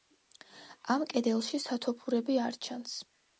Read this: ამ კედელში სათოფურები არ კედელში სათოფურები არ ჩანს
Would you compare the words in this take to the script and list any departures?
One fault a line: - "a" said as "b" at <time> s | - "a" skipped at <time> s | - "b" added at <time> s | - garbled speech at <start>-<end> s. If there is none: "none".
- "კედელში სათოფურები არ" skipped at 2.6 s